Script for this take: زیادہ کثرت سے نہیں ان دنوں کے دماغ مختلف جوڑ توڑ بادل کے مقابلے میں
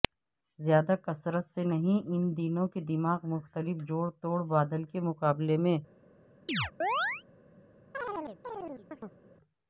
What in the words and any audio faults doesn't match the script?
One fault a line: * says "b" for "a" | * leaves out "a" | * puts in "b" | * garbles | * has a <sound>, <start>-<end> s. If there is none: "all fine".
* has a chirp, 6.5-7.2 s
* has a chirp, 7.9-9.2 s